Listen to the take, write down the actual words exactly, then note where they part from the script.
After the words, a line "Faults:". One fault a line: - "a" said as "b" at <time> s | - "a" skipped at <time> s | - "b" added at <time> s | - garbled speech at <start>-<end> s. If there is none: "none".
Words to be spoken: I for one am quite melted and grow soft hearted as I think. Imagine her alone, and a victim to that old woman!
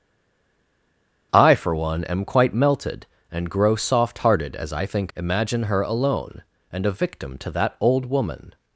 I for one am quite melted and grow soft hearted as I think. Imagine her alone, and a victim to that old woman!
Faults:
none